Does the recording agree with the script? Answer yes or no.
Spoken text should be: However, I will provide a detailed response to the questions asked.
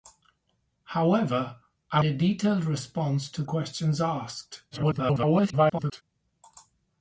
no